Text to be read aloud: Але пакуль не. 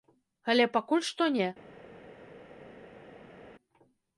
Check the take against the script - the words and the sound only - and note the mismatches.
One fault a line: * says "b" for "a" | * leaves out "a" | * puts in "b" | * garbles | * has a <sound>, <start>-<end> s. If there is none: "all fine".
* puts in "што"